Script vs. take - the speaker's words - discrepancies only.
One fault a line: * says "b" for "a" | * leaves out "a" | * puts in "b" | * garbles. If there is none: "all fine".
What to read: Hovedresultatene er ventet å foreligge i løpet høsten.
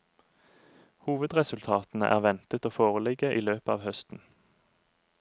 * puts in "av"